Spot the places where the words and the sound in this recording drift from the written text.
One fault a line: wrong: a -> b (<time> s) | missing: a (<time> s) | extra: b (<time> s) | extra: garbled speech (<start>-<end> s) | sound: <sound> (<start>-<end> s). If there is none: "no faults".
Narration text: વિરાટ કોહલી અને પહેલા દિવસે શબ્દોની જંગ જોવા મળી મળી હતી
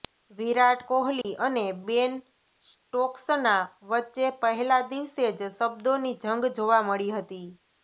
sound: dropout (1.2-1.2 s)
extra: બેન સ્ટોક્સના વચ્ચે (1.9 s)
extra: જ (5.3 s)
missing: મળી (7.1 s)